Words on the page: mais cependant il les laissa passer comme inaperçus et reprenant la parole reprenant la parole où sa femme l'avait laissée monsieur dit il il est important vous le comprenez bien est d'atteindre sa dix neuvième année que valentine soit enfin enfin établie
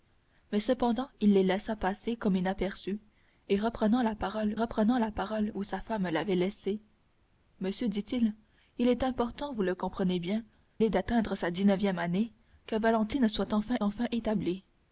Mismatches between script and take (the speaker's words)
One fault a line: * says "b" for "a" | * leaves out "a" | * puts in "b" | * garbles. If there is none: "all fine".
all fine